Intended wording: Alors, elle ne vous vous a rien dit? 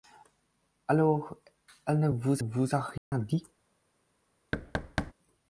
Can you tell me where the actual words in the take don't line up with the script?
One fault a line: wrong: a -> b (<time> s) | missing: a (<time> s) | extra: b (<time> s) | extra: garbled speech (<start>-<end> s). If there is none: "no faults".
no faults